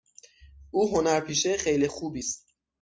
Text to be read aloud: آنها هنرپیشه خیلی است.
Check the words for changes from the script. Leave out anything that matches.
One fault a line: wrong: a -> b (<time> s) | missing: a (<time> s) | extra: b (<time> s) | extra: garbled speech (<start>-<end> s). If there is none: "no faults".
wrong: آنها -> او (0.7 s)
extra: خوبی (1.9 s)